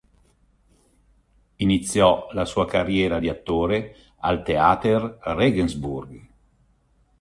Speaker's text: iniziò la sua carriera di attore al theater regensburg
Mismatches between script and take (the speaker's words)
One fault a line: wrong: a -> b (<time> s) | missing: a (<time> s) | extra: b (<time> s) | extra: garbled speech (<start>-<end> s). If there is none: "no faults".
no faults